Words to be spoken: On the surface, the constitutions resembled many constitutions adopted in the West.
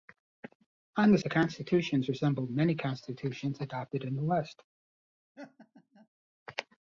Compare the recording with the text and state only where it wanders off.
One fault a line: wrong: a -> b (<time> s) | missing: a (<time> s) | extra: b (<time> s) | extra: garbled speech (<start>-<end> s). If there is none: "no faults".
missing: surface (1.2 s)